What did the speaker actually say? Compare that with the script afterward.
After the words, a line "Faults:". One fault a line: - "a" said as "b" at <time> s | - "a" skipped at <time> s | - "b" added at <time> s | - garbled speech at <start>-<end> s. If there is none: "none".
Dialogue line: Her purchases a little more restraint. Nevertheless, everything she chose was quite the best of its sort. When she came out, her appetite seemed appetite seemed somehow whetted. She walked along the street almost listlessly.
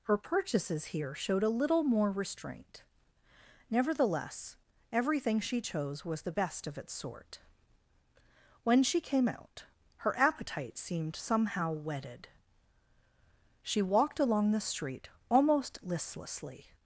Her purchases here showed a little more restraint. Nevertheless, everything she chose was the best of its sort. When she came out, her appetite seemed somehow whetted. She walked along the street almost listlessly.
Faults:
- "here showed" added at 0.8 s
- "quite" skipped at 6.2 s
- "appetite seemed" skipped at 11.2 s